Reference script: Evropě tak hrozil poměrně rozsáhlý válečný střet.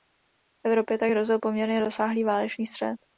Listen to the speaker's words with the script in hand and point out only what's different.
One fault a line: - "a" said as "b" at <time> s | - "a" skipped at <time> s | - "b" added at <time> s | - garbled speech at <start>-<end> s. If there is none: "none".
none